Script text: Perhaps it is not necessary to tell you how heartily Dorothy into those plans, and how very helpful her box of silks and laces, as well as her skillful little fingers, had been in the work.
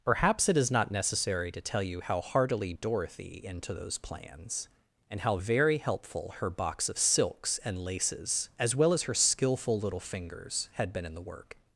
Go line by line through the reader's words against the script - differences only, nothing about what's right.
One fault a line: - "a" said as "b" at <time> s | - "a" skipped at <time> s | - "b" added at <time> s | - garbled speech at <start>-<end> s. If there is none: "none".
none